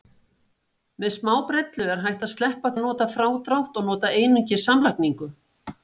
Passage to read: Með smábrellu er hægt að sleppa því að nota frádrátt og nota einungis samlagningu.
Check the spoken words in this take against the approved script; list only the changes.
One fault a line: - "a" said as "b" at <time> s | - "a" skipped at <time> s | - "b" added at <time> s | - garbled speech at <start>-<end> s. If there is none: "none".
- "því" skipped at 2.7 s